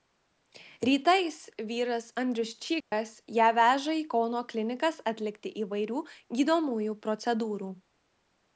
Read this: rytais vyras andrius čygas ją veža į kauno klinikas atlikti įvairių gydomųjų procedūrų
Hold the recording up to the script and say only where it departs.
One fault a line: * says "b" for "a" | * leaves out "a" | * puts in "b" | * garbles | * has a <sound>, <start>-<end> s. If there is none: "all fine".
* has a dropout, 2.8-2.9 s